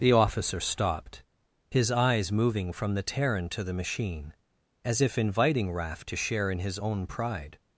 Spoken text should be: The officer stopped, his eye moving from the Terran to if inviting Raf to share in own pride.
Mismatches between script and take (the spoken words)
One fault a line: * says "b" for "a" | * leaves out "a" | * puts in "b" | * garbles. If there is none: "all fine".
* says "eyes" for "eye"
* puts in "the machine as"
* puts in "his"